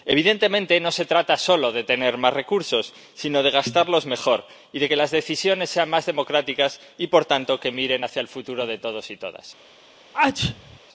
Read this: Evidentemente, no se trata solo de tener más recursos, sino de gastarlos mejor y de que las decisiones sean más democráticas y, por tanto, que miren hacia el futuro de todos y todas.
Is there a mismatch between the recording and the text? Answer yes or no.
no